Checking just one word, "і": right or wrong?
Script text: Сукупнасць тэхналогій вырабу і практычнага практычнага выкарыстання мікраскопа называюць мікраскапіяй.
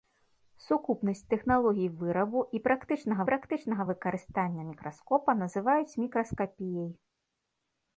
right